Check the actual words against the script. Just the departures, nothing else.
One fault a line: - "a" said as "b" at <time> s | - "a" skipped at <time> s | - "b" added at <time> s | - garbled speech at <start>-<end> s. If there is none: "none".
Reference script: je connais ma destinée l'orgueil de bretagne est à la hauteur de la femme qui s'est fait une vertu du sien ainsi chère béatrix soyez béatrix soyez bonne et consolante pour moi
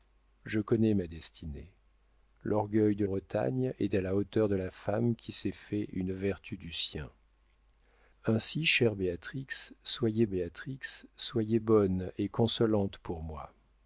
none